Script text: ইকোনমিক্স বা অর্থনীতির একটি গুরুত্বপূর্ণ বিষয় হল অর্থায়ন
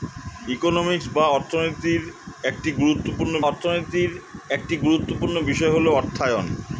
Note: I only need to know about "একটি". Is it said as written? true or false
true